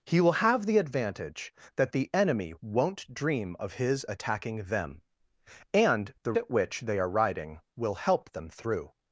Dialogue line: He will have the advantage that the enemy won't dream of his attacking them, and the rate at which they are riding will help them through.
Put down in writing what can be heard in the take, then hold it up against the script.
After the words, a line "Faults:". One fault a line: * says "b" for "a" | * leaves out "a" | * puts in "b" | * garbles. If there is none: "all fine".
He will have the advantage that the enemy won't dream of his attacking them, and the at which they are riding will help them through.
Faults:
* leaves out "rate"